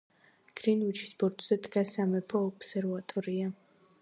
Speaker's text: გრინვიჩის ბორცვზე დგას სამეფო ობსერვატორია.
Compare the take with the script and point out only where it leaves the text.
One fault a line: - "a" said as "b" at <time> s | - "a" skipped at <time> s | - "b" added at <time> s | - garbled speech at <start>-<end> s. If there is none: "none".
none